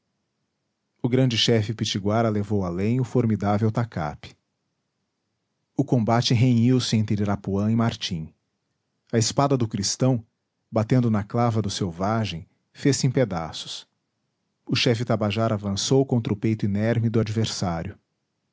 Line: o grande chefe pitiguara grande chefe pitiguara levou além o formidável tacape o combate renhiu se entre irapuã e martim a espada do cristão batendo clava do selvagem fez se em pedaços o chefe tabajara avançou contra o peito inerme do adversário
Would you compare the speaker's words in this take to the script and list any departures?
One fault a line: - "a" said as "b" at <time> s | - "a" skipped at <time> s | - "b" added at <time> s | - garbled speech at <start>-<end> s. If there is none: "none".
- "grande chefe pitiguara" skipped at 2.3 s
- "na" added at 11.1 s